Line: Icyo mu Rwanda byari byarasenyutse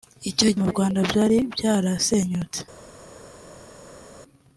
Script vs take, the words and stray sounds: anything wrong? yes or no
no